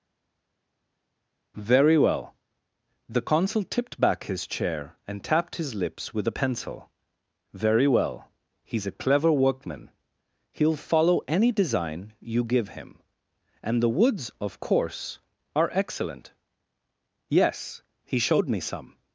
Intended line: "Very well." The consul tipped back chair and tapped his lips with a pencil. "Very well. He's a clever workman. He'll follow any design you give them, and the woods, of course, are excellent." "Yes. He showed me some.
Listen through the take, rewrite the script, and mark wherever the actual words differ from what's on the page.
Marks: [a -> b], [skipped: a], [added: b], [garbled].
"Very well." The consul tipped back [added: his] chair and tapped his lips with a pencil. "Very well. He's a clever workman. He'll follow any design you give [them, -> him] and the woods, of course, are excellent." "Yes. He showed me some.